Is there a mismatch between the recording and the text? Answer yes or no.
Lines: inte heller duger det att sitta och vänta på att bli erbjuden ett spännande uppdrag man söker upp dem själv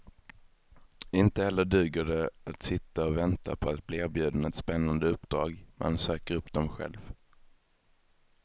no